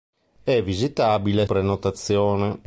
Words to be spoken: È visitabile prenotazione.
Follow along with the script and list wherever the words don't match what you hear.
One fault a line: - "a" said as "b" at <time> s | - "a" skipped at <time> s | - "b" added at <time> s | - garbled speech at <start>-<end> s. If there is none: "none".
none